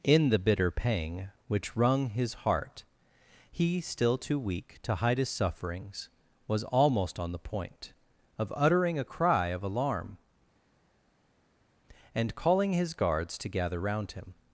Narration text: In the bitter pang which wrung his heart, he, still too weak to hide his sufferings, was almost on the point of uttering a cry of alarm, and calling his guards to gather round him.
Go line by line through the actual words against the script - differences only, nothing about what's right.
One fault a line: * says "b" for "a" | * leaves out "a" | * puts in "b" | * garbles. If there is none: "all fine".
all fine